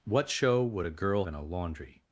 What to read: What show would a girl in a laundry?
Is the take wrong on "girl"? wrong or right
right